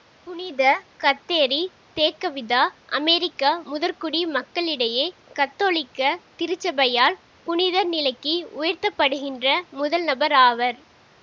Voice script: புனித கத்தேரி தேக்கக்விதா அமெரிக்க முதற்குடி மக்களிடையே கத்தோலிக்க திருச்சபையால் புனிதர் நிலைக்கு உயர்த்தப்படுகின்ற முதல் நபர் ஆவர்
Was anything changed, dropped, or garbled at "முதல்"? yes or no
no